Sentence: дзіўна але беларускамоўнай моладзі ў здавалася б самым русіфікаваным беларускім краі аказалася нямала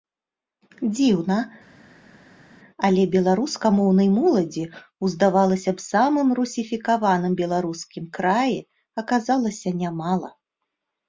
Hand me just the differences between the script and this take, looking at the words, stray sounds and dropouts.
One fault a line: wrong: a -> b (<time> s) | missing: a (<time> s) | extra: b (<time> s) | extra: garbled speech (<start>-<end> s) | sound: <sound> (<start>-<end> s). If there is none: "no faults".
no faults